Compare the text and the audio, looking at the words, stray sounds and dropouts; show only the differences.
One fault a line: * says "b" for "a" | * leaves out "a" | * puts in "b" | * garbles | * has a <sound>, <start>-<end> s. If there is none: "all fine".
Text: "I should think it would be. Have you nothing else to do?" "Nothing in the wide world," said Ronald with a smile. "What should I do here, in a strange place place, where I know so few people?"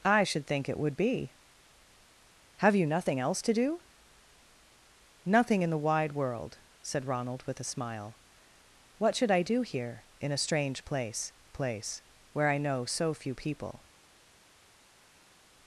all fine